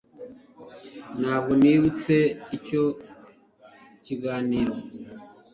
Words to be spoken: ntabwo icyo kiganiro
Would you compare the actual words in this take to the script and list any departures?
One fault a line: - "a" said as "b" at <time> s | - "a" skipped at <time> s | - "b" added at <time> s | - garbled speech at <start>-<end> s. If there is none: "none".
- "nibutse" added at 1.6 s